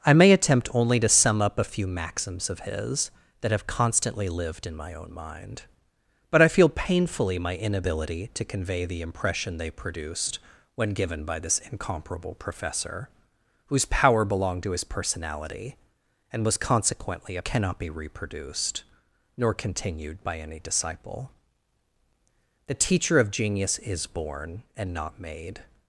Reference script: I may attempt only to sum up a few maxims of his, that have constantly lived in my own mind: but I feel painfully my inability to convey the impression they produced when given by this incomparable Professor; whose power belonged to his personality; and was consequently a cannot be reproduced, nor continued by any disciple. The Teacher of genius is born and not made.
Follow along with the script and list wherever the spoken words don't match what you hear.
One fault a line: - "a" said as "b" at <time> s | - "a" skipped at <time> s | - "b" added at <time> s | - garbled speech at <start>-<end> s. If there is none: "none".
none